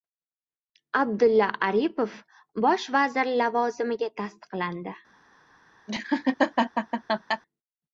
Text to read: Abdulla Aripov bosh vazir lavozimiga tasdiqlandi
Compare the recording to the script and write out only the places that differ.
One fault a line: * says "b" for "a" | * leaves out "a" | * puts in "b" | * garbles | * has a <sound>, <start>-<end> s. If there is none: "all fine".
* has a laugh, 5.9-7.4 s